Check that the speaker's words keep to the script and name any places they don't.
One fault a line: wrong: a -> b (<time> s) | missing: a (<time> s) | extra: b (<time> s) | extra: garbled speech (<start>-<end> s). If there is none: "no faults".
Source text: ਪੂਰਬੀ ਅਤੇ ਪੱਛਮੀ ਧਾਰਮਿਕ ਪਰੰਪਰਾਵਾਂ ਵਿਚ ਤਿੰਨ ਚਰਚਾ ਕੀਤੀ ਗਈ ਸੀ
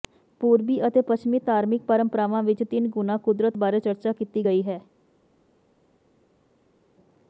extra: ਗੁਣਾ ਕੁਦਰਤ ਬਾਰੇ (2.9 s)
wrong: ਸੀ -> ਹੈ (4.6 s)